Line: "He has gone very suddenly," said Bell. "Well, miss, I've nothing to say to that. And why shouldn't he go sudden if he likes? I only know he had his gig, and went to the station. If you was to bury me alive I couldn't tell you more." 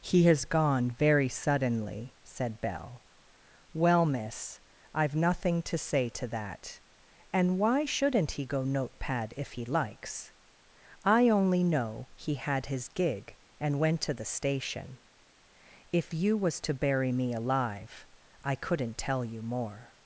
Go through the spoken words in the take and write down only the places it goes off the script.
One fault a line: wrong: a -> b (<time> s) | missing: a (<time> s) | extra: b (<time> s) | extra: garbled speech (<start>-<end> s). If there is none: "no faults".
wrong: sudden -> notepad (8.6 s)